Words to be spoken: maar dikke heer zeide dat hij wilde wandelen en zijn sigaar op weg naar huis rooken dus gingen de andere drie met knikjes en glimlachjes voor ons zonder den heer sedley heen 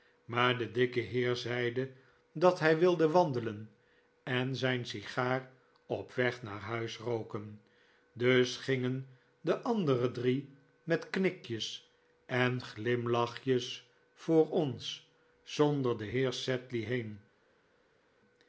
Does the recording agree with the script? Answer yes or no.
no